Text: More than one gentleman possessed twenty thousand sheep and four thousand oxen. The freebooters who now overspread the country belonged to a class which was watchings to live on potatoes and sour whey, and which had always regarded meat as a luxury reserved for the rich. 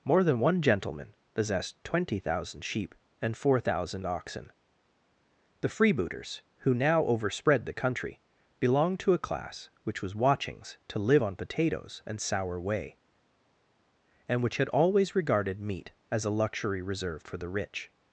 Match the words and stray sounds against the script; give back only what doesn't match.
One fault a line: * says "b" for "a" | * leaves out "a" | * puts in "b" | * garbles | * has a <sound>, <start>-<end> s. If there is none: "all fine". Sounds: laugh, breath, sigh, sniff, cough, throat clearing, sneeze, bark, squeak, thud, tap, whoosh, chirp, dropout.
all fine